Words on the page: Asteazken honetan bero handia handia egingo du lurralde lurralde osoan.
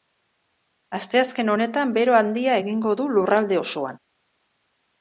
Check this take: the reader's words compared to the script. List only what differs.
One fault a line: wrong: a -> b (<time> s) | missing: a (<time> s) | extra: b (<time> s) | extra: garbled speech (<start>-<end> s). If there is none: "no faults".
missing: handia (2.6 s)
missing: lurralde (3.6 s)